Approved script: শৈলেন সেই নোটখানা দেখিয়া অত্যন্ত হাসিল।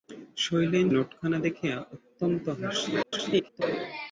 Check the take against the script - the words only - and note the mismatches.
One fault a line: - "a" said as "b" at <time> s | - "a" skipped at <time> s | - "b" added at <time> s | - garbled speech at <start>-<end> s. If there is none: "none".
- "সেই" skipped at 0.9 s
- garbled speech at 3.0-3.6 s